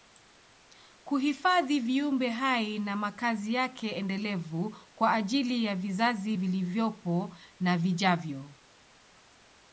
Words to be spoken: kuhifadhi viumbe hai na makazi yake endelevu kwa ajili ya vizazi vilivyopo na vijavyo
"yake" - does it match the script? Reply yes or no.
yes